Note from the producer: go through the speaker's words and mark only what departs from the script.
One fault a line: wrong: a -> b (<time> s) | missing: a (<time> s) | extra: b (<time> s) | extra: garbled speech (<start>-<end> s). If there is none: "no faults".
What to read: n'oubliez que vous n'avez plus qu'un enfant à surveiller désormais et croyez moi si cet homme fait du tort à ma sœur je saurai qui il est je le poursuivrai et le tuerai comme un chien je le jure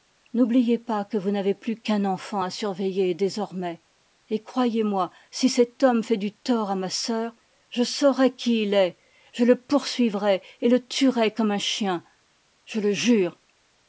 extra: pas (0.8 s)